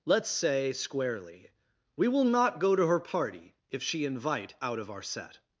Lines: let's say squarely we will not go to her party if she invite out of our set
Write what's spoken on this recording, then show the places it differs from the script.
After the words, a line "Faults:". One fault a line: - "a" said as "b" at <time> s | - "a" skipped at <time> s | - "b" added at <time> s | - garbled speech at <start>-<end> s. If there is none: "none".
let's say squarely we will not go to her party if she invite out of our set
Faults:
none